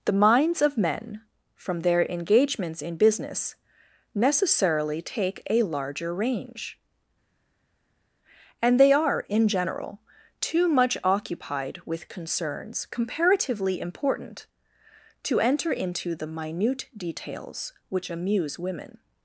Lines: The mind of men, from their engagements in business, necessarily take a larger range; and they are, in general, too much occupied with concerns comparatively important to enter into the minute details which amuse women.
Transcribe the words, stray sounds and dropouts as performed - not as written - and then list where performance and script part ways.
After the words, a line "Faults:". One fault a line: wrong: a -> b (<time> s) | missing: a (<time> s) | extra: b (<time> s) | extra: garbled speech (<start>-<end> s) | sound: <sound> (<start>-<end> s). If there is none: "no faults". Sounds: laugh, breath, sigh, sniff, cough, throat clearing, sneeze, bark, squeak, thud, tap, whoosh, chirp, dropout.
The minds of men, from their engagements in business, necessarily take a larger range; and they are, in general, too much occupied with concerns comparatively important to enter into the minute details which amuse women.
Faults:
wrong: mind -> minds (0.1 s)